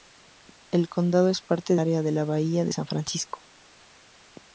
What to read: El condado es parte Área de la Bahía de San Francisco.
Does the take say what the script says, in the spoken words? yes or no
yes